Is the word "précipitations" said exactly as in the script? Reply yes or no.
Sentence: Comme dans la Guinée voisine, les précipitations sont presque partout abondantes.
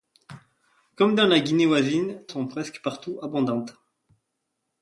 no